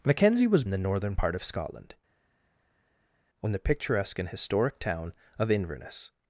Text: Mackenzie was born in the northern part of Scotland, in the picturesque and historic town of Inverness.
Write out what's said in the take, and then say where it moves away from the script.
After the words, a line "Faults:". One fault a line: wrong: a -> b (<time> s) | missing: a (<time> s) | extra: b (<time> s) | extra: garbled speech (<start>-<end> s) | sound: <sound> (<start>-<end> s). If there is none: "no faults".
Mackenzie was in the northern part of Scotland, in the picturesque and historic town of Inverness.
Faults:
missing: born (0.6 s)